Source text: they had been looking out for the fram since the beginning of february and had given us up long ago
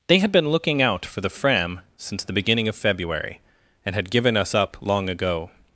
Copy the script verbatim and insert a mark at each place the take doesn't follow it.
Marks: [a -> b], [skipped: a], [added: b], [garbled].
they had been looking out for the fram since the beginning of february and had given us up long ago